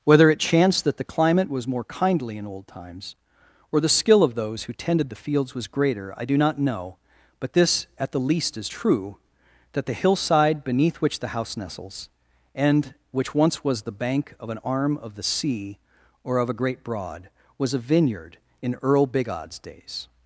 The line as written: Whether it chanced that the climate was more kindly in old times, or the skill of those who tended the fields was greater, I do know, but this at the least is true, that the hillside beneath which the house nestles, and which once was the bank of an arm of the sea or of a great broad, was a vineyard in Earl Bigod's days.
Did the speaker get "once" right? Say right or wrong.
right